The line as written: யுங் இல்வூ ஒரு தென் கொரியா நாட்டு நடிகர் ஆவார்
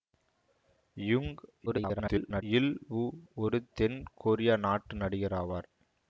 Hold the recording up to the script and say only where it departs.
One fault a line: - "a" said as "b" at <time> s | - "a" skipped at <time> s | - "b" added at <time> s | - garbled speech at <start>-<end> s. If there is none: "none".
- garbled speech at 1.7-2.4 s